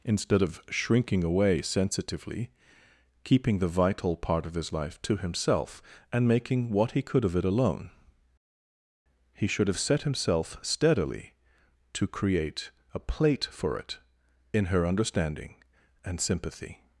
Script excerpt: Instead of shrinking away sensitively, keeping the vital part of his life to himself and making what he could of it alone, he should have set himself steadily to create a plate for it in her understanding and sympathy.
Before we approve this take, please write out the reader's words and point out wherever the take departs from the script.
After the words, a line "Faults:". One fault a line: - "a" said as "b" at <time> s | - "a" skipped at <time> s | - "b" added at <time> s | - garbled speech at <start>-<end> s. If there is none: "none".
Instead of shrinking away sensitively, keeping the vital part of his life to himself and making what he could of it alone, he should have set himself steadily to create a plate for it in her understanding and sympathy.
Faults:
none